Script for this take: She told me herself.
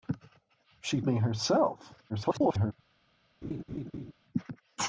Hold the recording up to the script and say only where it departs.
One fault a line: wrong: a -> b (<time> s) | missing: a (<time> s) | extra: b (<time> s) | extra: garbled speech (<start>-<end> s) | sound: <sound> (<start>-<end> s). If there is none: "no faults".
missing: told (1.0 s)
extra: garbled speech (2.1-2.7 s)
sound: laugh (3.4-4.1 s)